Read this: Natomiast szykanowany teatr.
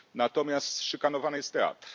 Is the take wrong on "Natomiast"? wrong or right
right